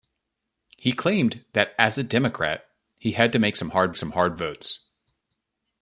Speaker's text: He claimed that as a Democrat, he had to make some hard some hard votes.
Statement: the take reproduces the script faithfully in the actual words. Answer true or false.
true